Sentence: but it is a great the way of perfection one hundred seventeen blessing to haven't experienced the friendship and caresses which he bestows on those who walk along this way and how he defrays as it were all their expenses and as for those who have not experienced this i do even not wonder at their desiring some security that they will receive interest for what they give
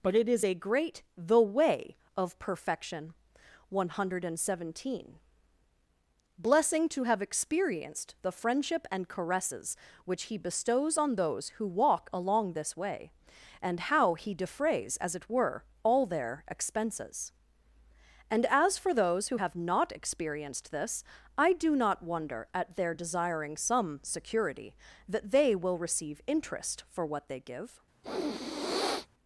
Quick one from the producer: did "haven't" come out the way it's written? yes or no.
no